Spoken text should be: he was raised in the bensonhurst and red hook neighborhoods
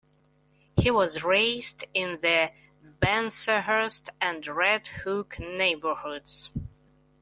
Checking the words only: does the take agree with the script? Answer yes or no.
yes